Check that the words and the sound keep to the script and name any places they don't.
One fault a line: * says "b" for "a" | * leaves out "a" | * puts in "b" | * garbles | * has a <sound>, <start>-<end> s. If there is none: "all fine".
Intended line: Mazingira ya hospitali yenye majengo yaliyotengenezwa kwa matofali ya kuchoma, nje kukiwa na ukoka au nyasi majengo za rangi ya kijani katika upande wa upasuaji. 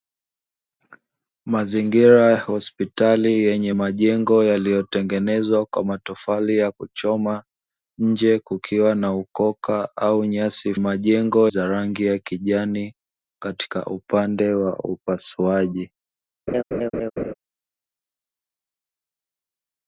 * has a laugh, 16.5-17.3 s